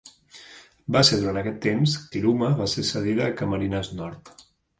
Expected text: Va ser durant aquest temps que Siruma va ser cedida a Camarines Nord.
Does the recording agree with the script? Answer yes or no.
no